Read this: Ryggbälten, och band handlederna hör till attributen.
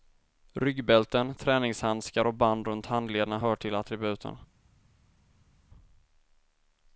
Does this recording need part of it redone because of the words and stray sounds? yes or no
yes